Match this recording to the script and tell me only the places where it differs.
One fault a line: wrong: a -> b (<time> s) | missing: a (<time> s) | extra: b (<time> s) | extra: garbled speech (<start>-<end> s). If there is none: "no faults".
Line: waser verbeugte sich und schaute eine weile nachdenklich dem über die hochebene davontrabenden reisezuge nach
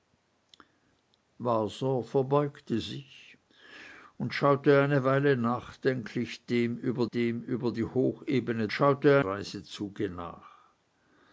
extra: dem über (7.1 s)
wrong: davontrabenden -> schaute (8.7 s)